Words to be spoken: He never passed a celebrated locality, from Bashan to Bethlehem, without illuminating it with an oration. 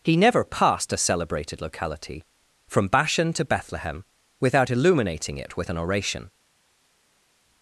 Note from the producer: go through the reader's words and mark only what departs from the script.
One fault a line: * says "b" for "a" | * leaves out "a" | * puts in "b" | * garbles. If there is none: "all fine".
all fine